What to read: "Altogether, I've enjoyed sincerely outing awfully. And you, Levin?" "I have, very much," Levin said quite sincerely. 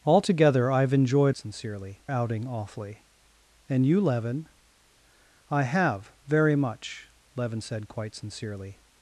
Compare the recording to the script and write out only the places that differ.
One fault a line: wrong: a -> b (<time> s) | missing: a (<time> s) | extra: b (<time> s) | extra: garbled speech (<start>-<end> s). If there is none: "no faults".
no faults